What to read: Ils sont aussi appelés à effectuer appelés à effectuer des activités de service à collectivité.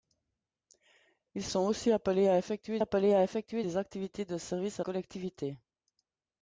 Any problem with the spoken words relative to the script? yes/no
no